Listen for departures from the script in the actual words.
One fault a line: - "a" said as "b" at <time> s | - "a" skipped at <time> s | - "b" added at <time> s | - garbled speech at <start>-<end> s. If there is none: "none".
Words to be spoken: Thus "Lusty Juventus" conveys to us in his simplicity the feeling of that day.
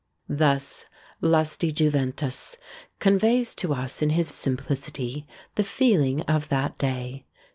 none